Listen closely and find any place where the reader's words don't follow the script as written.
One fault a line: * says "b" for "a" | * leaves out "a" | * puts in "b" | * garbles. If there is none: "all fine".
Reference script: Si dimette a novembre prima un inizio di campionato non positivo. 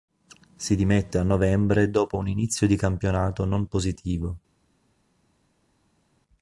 * says "dopo" for "prima"